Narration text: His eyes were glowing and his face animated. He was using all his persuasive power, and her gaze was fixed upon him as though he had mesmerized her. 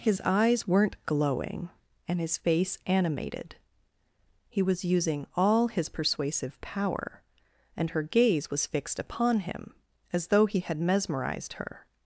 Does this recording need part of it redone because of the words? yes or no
yes